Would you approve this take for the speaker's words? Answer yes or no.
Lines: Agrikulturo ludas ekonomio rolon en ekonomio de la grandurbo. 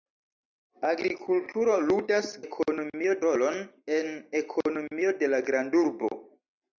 yes